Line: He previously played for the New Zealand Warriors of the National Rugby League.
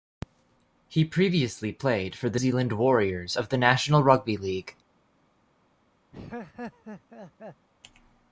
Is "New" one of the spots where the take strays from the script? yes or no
yes